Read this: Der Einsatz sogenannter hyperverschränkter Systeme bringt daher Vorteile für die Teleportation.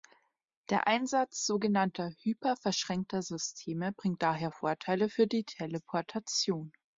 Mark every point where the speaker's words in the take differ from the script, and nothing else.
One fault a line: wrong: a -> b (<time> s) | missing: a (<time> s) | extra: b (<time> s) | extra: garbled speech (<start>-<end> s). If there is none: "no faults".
no faults